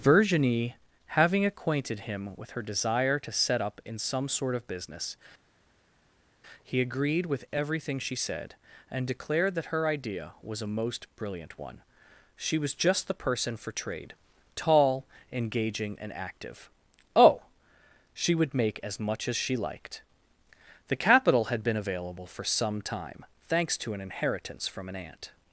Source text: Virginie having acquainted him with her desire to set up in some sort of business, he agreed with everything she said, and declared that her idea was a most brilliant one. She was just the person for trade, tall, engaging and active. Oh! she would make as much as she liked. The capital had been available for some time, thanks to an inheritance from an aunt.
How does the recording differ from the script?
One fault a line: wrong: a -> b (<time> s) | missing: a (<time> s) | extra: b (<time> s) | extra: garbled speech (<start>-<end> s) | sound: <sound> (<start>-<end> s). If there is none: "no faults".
no faults